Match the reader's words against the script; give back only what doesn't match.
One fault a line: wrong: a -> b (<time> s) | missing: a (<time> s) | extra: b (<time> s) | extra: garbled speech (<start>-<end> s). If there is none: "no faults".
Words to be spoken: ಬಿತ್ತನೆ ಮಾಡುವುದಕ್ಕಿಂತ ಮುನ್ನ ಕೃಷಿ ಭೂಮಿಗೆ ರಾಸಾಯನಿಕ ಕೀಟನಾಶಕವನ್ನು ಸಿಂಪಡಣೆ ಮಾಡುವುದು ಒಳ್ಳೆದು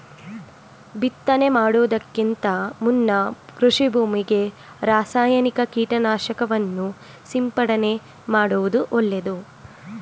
no faults